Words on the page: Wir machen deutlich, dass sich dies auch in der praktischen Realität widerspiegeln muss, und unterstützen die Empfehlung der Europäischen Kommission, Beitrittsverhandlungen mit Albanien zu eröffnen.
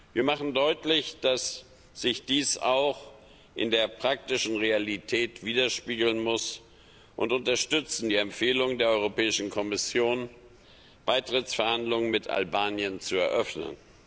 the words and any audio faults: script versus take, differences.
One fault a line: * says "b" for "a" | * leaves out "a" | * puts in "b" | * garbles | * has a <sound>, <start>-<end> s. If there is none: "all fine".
all fine